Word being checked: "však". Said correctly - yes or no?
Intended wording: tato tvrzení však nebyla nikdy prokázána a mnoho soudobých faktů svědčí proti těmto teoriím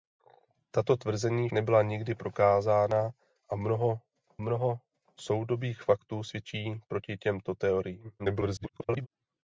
no